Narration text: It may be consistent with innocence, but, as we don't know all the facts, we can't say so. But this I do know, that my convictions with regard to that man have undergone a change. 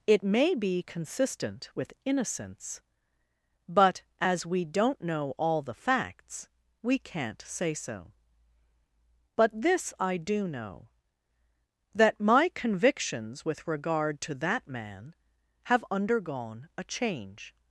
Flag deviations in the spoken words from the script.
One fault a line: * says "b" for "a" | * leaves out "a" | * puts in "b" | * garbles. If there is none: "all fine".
all fine